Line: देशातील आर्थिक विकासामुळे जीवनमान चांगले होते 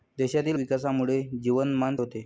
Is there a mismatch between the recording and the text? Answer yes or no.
yes